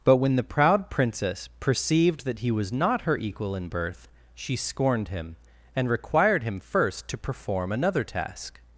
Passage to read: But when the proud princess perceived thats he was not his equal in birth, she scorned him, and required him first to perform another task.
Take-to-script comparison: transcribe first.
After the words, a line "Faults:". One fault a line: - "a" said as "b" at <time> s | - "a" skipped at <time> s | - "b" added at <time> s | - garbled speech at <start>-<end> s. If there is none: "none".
But when the proud princess perceived that he was not her equal in birth, she scorned him, and required him first to perform another task.
Faults:
- "thats" said as "that" at 2.2 s
- "his" said as "her" at 3.0 s